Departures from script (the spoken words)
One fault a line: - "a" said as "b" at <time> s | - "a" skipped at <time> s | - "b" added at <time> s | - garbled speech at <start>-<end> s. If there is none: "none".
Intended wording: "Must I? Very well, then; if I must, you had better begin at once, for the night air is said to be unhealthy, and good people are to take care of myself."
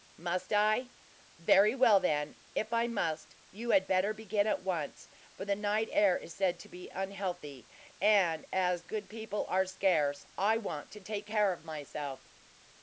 - "as" added at 8.5 s
- "scarce I want" added at 9.7 s